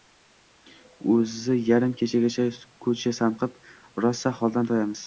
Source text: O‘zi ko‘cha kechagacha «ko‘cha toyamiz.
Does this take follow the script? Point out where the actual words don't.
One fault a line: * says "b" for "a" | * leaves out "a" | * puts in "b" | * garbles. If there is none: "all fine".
* says "yarim" for "ko‘cha"
* puts in "sanqib rosa holdan"